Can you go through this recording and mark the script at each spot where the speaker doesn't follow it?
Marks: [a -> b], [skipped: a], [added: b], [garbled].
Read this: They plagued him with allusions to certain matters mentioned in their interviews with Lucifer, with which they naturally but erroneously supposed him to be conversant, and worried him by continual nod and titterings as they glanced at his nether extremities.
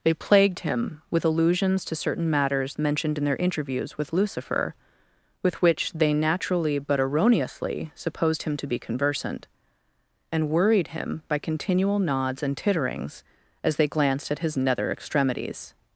They plagued him with allusions to certain matters mentioned in their interviews with Lucifer, with which they naturally but erroneously supposed him to be conversant, and worried him by continual [nod -> nods] and titterings as they glanced at his nether extremities.